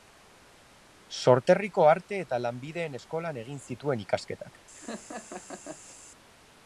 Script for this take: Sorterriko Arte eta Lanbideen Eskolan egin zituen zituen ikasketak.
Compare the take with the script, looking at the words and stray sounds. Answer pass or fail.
fail